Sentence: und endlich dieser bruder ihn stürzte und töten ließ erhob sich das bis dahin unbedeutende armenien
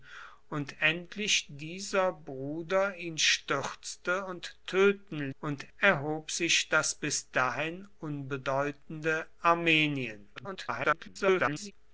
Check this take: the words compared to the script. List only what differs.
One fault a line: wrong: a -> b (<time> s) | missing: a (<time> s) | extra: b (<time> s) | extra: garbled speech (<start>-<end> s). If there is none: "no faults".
wrong: ließ -> und (5.4 s)
extra: garbled speech (10.4-11.7 s)